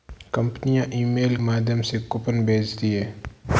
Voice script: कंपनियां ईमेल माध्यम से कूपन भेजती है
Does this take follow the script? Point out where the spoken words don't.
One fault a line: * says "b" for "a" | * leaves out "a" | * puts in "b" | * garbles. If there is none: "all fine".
all fine